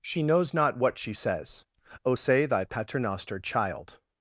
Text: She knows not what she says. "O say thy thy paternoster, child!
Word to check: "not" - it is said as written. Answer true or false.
true